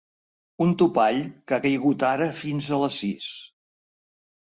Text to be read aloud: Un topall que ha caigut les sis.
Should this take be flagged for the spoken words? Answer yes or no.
yes